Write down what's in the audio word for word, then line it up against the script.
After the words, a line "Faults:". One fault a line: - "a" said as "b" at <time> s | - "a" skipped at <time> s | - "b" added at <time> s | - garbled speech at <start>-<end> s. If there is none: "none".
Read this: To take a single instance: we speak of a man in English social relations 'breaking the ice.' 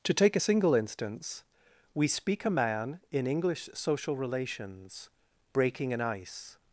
To take a single instance: we speak a man in English social relations 'breaking an ice.'
Faults:
- "of" skipped at 2.4 s
- "the" said as "an" at 5.9 s